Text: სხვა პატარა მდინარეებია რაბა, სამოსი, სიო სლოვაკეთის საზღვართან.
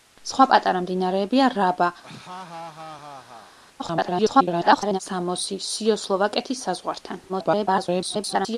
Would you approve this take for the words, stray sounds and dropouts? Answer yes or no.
no